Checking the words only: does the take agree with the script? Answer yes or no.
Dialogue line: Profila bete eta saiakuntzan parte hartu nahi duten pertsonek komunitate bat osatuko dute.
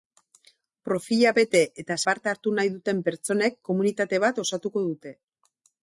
no